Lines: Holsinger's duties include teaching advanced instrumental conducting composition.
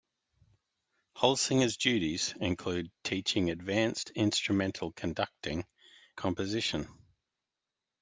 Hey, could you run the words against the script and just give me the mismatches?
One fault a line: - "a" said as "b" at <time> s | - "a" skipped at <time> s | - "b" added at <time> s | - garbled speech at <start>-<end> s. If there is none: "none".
none